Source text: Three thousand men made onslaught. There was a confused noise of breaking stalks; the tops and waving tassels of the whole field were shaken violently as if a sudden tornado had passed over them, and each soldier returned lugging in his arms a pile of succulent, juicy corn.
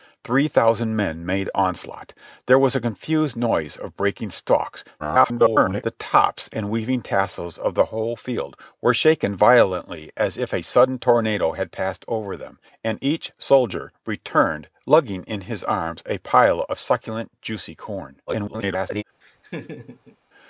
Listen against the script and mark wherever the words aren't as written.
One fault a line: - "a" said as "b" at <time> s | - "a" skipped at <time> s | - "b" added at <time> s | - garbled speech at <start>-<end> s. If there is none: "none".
- garbled speech at 5.0-5.8 s
- garbled speech at 18.3-19.0 s